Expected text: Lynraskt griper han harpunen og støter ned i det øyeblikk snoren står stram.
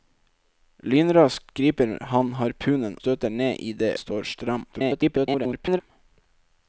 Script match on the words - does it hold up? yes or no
no